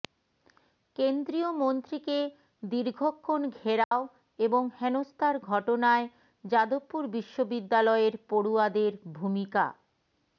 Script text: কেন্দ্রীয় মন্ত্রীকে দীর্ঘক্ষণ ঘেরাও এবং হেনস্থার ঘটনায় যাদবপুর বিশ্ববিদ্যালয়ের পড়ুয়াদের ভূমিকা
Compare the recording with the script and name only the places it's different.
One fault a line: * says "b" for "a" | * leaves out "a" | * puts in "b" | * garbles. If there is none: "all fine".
all fine